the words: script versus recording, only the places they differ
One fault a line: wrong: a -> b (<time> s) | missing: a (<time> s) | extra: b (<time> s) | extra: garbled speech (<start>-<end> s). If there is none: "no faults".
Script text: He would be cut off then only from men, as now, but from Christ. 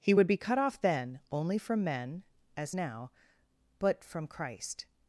no faults